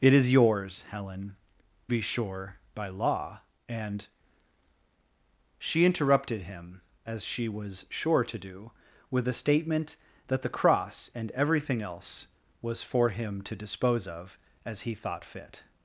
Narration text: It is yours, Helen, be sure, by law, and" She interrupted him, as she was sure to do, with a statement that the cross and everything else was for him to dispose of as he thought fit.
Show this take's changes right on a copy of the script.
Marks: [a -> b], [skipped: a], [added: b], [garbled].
It is yours, Helen, be sure, by law, and" She interrupted him, as she was sure to do, with a statement that the cross and everything else was for him to dispose of as he thought fit.